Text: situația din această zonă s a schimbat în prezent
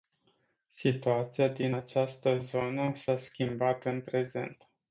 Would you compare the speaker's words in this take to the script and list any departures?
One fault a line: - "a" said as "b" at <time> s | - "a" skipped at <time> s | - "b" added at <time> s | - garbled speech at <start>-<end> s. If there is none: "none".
none